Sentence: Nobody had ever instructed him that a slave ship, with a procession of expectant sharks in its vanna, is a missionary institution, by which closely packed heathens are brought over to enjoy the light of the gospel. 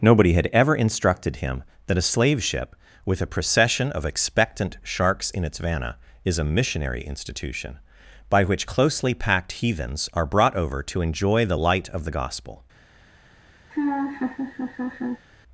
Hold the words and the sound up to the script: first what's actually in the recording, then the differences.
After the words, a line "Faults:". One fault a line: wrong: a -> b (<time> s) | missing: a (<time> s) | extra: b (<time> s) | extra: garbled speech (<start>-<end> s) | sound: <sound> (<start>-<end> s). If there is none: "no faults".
Nobody had ever instructed him that a slave ship, with a procession of expectant sharks in its vanna, is a missionary institution, by which closely packed heathens are brought over to enjoy the light of the gospel.
Faults:
sound: laugh (13.7-15.2 s)